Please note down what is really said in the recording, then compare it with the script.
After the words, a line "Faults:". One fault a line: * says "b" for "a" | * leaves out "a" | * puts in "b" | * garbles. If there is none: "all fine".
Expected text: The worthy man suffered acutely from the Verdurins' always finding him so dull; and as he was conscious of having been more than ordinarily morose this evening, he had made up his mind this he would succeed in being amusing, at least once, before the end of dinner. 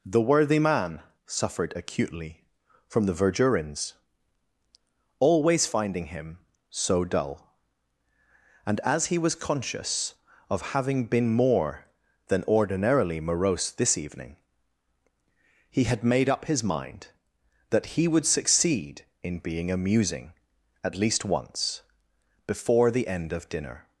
The worthy man suffered acutely from the Verdurins' always finding him so dull; and as he was conscious of having been more than ordinarily morose this evening, he had made up his mind that he would succeed in being amusing, at least once, before the end of dinner.
Faults:
* says "that" for "this"